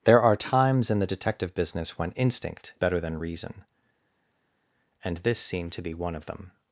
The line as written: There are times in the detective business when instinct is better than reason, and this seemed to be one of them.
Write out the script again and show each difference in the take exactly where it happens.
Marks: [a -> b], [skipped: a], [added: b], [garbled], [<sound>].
There are times in the detective business when instinct [skipped: is] better than reason, and this seemed to be one of them.